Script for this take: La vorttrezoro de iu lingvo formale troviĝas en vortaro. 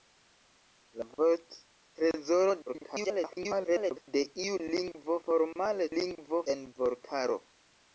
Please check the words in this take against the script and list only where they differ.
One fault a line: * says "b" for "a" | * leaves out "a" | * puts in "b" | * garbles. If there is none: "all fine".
* garbles
* says "lingvo" for "troviĝas"